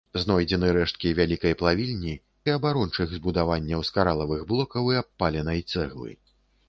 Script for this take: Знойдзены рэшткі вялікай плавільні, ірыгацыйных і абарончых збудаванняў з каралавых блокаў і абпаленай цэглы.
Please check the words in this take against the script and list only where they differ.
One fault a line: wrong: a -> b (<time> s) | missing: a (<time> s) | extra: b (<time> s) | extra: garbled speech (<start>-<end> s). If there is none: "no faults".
missing: ірыгацыйных (2.1 s)